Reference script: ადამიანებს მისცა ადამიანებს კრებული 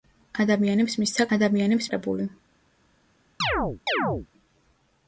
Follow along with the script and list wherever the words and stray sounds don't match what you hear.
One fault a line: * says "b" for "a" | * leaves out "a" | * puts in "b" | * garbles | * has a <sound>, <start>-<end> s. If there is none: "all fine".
* has a chirp, 3.4-4.3 s